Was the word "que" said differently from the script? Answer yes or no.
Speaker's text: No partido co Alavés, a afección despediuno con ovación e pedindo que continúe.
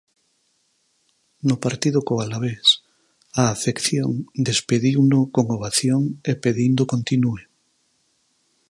yes